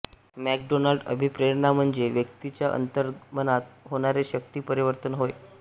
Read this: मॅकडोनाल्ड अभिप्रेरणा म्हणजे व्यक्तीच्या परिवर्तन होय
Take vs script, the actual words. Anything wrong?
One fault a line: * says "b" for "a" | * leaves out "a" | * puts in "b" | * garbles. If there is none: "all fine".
* puts in "अंतर्मनात होणारे शक्ती"